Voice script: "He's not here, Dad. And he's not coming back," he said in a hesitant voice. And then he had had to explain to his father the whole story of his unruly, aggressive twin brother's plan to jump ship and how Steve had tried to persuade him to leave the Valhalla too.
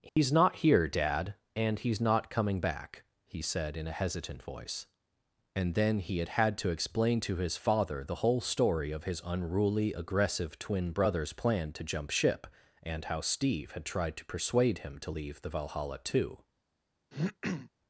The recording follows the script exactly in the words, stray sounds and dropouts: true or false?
false